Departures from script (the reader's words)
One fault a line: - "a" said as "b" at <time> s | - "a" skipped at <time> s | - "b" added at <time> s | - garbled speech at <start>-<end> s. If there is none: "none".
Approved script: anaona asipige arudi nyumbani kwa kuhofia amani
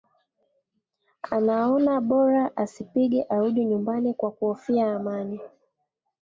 - "bora" added at 2.0 s